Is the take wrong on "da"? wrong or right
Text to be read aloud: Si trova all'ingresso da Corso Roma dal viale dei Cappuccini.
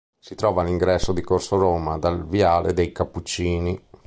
wrong